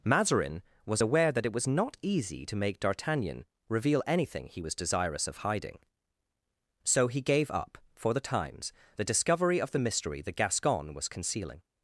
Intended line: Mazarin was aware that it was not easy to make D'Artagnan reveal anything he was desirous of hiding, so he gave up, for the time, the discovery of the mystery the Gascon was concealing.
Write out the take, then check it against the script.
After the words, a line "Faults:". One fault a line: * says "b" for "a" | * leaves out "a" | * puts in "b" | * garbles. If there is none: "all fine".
Mazarin was aware that it was not easy to make D'Artagnan reveal anything he was desirous of hiding, so he gave up, for the times, the discovery of the mystery the Gascon was concealing.
Faults:
* says "times" for "time"